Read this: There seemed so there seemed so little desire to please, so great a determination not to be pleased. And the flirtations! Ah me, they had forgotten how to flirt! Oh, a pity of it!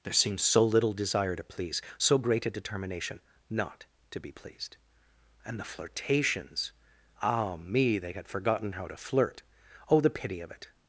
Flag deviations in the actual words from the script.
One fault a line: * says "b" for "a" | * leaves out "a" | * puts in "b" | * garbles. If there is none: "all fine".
* leaves out "there seemed so"
* says "the" for "a"